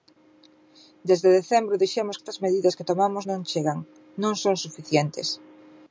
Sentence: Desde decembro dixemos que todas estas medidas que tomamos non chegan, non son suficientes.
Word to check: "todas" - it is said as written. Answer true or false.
false